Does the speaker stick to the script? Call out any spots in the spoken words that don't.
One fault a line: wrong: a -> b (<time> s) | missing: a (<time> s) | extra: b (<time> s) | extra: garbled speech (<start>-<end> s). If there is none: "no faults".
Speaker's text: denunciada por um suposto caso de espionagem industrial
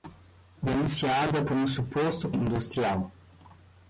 missing: caso de espionagem (2.3 s)